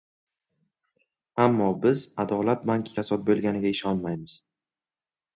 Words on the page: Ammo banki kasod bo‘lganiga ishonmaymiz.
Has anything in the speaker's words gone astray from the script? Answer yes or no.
yes